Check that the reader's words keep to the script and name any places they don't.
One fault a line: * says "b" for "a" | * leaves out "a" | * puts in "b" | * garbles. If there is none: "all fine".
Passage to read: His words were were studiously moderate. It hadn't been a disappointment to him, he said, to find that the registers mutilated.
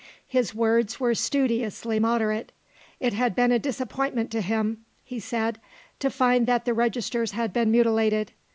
* leaves out "were"
* says "had" for "hadn't"
* puts in "had been"